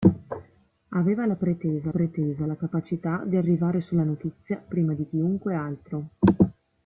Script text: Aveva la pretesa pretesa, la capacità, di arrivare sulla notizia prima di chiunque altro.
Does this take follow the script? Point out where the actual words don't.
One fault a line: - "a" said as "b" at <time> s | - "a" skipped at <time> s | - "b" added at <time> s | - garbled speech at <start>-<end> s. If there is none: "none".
none